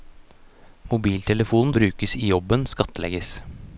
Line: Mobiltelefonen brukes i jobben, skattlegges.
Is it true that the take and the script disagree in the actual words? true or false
false